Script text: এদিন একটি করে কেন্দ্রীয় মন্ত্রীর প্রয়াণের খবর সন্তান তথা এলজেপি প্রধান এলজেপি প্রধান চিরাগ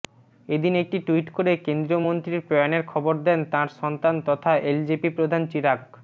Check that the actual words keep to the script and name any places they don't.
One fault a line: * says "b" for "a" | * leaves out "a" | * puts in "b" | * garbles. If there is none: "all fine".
* puts in "টুইট"
* puts in "দেন তাঁর"
* leaves out "এলজেপি প্রধান"